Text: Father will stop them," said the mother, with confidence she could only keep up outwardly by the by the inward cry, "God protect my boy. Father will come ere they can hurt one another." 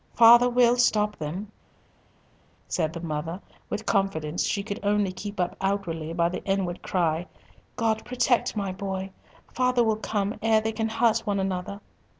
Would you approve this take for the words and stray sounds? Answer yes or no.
no